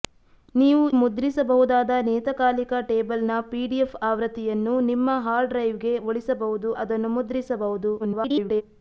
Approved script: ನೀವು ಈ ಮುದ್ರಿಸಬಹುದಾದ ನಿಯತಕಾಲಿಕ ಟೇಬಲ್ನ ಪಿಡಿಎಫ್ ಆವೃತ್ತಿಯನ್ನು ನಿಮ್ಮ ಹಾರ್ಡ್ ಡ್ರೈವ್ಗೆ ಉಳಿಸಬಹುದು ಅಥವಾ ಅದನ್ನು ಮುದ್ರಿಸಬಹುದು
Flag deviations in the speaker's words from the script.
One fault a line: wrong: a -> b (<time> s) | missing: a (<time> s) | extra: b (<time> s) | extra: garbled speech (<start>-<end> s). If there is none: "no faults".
missing: ಈ (0.8 s)
missing: ಅಥವಾ (6.7 s)
extra: garbled speech (8.0-8.6 s)